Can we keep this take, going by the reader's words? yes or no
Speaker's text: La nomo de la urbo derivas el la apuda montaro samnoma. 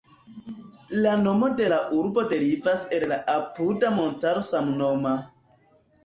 yes